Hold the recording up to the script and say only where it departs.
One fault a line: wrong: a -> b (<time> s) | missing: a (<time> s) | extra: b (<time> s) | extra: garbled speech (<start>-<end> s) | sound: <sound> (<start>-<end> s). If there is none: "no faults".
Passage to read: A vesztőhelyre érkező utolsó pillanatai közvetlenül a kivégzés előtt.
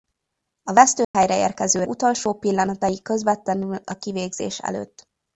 sound: dropout (1.0-1.1 s)